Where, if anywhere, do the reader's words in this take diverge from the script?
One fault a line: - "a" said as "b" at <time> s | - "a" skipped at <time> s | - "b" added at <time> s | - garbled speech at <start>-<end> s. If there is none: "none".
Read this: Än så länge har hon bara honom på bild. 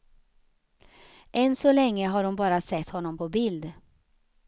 - "sett" added at 2.6 s